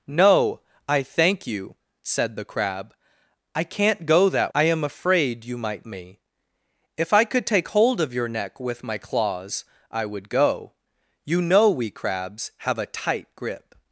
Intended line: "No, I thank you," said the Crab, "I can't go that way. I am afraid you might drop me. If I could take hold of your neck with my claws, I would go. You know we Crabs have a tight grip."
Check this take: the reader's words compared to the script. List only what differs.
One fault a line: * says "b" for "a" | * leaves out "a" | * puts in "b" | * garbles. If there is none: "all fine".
* leaves out "way"
* leaves out "drop"